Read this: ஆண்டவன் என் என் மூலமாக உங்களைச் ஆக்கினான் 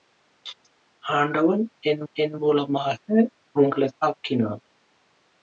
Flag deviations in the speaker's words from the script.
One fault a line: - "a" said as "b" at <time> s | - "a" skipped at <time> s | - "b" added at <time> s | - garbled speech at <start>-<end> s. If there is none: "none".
none